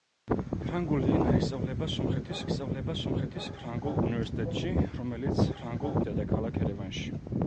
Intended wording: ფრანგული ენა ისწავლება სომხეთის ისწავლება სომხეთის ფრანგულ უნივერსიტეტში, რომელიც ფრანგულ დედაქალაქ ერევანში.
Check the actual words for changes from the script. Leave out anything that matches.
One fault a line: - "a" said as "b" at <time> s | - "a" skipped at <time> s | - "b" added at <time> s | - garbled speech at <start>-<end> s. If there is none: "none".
none